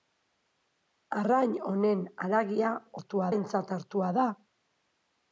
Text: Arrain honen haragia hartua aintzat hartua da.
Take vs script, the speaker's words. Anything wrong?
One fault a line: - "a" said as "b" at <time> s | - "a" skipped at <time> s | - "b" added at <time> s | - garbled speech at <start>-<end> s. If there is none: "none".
none